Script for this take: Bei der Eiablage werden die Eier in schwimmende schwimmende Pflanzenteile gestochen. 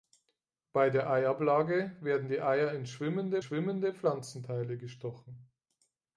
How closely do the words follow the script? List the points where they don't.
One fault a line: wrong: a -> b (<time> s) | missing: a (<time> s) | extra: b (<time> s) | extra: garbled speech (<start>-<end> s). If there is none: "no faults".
no faults